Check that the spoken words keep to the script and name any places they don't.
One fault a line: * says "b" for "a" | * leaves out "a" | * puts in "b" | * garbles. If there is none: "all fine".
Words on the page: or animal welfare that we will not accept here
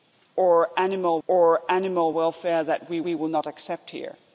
* puts in "or animal"
* puts in "we"